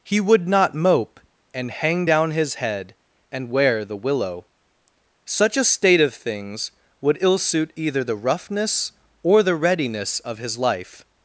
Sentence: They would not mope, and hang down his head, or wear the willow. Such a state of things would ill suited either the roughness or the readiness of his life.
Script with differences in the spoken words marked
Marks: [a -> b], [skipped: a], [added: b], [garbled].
[They -> He] would not mope, and hang down his head, [or -> and] wear the willow. Such a state of things would ill [suited -> suit] either the roughness or the readiness of his life.